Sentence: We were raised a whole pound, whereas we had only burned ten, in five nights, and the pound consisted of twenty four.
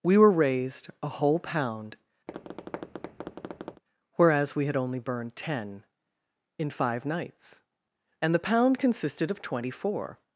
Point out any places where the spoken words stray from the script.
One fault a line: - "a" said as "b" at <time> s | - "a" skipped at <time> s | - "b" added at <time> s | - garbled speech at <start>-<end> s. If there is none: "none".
none